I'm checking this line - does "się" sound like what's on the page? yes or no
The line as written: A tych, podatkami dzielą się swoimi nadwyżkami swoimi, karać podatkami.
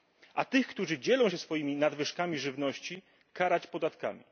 yes